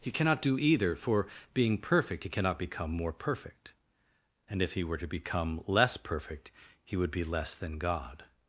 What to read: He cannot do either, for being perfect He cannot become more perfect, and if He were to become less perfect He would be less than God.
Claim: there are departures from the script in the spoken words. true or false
false